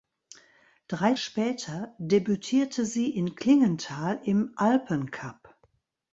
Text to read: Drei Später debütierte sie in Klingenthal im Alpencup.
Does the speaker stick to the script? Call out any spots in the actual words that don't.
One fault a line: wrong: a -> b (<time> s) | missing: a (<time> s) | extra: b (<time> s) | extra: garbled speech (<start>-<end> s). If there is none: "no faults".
no faults